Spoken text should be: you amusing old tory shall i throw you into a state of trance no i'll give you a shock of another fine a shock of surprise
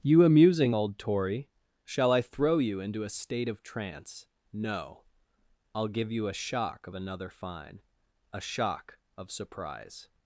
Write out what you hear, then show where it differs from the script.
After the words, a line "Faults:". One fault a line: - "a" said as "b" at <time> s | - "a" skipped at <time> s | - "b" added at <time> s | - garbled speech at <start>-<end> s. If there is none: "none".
you amusing old tory shall i throw you into a state of trance no i'll give you a shock of another fine a shock of surprise
Faults:
none